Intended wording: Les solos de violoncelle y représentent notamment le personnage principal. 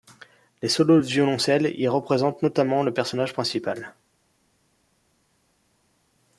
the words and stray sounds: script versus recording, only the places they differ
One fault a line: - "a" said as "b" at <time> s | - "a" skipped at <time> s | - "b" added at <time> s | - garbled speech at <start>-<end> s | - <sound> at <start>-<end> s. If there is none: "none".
none